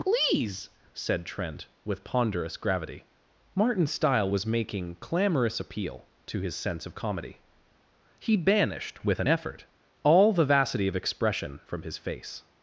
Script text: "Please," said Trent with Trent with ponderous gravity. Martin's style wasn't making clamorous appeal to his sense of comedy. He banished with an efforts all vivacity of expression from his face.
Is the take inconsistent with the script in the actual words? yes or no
yes